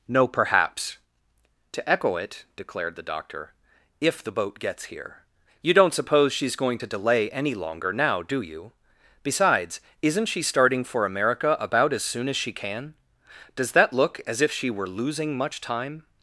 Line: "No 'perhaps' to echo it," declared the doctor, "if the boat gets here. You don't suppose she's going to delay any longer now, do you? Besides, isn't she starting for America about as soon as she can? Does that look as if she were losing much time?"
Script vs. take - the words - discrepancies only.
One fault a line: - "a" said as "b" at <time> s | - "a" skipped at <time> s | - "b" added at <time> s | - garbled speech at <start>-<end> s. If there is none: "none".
none